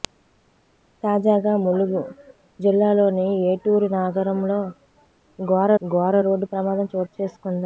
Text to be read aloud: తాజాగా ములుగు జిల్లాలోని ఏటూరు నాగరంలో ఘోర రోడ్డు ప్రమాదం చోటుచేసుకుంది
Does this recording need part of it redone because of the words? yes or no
yes